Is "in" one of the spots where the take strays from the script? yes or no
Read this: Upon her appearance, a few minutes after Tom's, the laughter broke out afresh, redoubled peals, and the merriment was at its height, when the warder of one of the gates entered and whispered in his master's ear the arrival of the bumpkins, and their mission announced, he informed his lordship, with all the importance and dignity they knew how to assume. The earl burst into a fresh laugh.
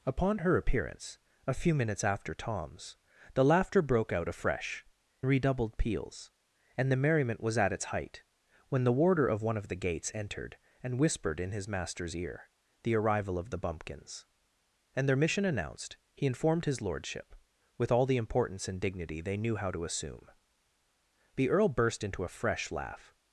no